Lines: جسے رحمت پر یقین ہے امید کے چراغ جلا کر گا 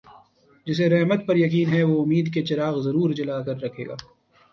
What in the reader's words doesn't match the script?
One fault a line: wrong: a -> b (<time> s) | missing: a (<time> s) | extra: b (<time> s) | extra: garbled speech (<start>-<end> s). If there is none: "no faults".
extra: وہ (1.8 s)
extra: ضرور (2.8 s)
extra: رکھے (3.6 s)